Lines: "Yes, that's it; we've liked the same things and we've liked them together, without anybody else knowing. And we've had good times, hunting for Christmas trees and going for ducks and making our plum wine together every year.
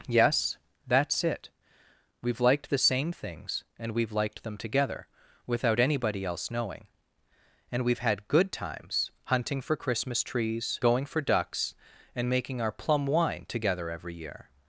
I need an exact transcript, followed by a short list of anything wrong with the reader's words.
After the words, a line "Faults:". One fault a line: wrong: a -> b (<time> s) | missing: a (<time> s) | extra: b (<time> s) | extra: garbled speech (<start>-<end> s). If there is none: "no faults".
"Yes, that's it; we've liked the same things and we've liked them together, without anybody else knowing. And we've had good times, hunting for Christmas trees going for ducks and making our plum wine together every year.
Faults:
missing: and (10.8 s)